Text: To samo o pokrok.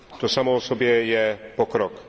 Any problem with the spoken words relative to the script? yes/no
yes